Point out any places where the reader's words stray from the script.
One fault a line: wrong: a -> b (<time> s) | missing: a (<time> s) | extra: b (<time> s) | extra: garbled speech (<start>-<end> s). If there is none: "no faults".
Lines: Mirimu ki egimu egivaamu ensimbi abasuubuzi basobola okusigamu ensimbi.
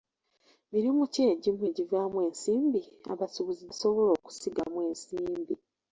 no faults